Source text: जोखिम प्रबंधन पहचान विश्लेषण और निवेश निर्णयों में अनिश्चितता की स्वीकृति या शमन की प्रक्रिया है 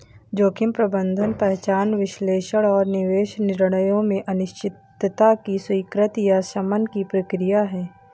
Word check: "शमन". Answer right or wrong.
right